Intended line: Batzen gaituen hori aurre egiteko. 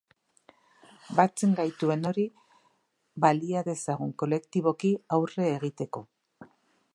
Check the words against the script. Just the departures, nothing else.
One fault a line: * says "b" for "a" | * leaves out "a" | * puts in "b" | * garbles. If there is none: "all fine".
* puts in "balia dezagun kolektiboki"